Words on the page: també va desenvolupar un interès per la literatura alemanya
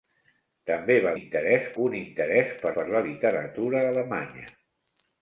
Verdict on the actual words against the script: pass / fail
fail